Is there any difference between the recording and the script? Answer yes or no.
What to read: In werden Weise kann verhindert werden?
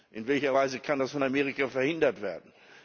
yes